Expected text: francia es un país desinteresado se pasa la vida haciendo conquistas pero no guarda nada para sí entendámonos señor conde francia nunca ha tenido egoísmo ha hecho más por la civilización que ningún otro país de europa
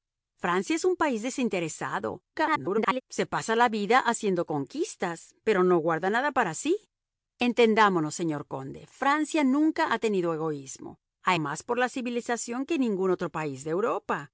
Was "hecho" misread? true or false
true